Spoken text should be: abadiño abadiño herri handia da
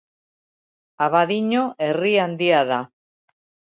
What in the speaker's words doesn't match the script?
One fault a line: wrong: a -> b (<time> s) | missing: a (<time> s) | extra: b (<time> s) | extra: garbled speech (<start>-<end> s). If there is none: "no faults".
missing: abadiño (1.6 s)